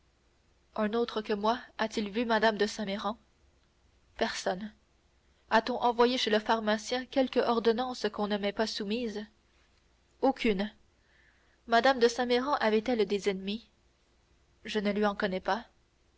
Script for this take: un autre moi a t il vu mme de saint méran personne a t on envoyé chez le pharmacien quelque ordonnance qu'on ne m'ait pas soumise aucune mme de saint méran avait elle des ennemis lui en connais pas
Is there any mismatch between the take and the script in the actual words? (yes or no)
yes